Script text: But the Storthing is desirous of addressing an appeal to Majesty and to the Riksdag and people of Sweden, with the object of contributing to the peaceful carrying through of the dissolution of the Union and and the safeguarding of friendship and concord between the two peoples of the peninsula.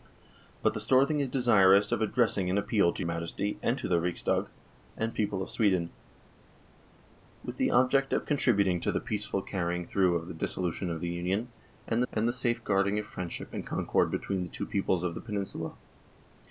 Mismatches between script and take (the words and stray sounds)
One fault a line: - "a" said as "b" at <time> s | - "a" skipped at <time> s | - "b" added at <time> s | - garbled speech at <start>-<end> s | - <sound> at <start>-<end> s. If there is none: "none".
none